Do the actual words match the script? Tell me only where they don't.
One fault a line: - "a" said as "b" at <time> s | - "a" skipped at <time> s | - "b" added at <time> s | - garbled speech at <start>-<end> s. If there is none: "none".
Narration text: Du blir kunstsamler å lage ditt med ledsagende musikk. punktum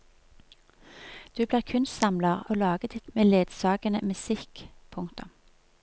none